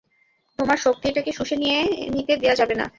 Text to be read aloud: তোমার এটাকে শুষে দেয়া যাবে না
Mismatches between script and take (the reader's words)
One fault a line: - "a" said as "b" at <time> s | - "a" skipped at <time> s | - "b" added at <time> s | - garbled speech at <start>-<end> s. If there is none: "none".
- "শক্তি" added at 0.8 s
- "নিতে" added at 2.1 s